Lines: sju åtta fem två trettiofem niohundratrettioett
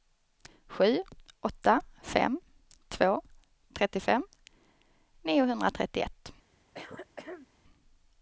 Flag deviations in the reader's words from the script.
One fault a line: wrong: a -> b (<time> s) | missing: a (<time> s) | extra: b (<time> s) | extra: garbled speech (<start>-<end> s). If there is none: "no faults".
no faults